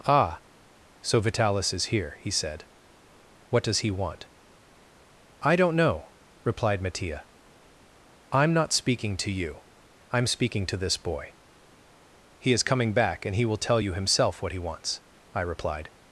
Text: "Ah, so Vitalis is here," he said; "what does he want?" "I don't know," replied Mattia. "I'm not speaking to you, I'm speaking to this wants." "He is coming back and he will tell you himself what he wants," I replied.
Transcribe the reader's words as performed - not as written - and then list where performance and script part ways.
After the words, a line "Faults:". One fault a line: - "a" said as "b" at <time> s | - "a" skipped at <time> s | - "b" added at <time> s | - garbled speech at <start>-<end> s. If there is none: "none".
"Ah, so Vitalis is here," he said; "what does he want?" "I don't know," replied Mattia. "I'm not speaking to you, I'm speaking to this boy." "He is coming back and he will tell you himself what he wants," I replied.
Faults:
- "wants" said as "boy" at 11.0 s